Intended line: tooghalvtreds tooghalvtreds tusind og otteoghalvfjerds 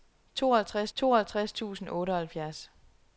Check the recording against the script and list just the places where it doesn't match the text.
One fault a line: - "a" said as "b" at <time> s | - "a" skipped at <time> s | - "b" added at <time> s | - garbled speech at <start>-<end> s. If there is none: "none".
none